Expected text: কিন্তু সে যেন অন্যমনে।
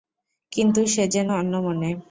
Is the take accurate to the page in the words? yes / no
yes